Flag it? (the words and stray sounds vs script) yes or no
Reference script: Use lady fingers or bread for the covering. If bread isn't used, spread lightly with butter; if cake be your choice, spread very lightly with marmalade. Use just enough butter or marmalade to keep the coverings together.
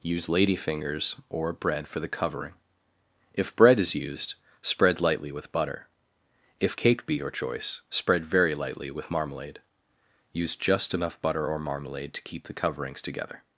yes